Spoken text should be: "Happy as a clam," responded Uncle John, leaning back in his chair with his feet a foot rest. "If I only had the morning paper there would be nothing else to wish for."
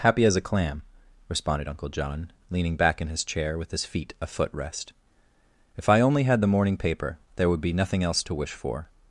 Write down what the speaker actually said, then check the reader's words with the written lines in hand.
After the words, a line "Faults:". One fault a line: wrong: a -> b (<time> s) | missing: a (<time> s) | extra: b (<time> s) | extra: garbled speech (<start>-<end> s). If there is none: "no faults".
"Happy as a clam," responded Uncle John, leaning back in his chair with his feet a foot rest. "If I only had the morning paper there would be nothing else to wish for."
Faults:
no faults